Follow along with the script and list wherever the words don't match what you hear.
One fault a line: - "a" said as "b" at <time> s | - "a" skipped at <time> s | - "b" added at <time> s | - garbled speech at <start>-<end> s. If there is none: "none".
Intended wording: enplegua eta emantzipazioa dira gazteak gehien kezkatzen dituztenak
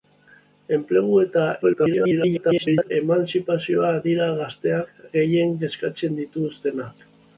- garbled speech at 1.6-2.9 s